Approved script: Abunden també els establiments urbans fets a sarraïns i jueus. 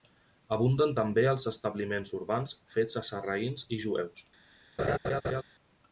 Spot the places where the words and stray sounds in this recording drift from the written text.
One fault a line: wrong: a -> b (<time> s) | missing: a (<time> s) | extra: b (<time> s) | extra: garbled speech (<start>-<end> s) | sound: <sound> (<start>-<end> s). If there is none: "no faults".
sound: laugh (4.8-5.4 s)